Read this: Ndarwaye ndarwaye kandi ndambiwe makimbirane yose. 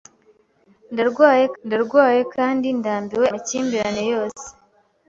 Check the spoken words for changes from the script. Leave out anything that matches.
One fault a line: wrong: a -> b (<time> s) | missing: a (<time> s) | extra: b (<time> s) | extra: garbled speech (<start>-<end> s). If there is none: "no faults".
no faults